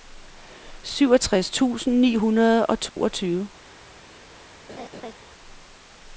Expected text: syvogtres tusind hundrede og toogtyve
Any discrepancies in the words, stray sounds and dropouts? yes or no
yes